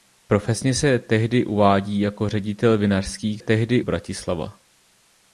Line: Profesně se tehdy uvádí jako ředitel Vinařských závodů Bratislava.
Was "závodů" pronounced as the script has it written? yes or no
no